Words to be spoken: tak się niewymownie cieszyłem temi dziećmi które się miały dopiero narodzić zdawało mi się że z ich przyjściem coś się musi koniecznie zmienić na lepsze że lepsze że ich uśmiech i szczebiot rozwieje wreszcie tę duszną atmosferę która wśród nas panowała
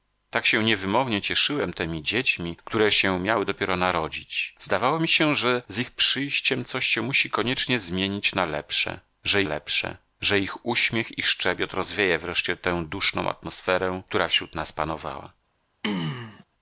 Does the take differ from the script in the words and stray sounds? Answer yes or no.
yes